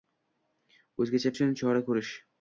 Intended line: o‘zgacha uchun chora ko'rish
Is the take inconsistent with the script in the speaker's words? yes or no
no